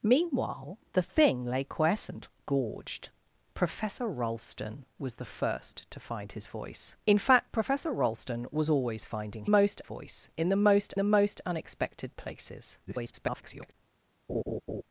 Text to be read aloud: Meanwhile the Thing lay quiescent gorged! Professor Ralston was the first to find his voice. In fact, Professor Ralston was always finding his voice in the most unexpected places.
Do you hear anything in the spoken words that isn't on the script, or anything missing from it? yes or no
yes